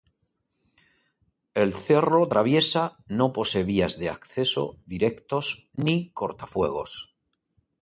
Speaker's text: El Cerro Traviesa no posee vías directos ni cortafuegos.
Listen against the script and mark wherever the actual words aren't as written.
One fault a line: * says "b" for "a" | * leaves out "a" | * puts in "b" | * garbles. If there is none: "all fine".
* puts in "de acceso"